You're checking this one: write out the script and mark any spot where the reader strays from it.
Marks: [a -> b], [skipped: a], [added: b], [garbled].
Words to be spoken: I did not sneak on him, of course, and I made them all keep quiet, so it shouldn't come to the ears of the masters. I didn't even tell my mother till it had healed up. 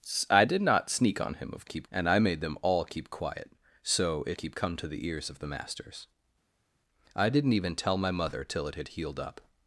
I did not sneak on him, of [course, -> keep] and I made them all keep quiet, so it [shouldn't -> keep] come to the ears of the masters. I didn't even tell my mother till it had healed up.